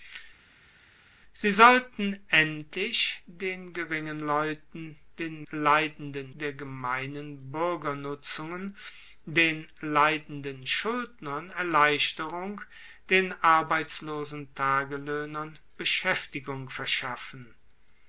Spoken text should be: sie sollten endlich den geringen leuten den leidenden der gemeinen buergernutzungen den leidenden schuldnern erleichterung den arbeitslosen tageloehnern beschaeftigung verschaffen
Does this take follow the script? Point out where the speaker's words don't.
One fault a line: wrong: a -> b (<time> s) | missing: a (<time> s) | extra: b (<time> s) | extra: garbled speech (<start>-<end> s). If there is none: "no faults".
no faults